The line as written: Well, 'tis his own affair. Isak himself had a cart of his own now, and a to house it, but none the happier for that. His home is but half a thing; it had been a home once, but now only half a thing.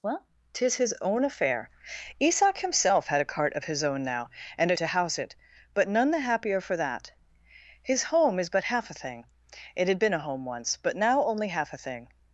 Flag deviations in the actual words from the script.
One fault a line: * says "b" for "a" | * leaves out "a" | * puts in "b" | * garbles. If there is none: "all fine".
all fine